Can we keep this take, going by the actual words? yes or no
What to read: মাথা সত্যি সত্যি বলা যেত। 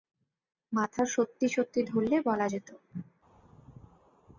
no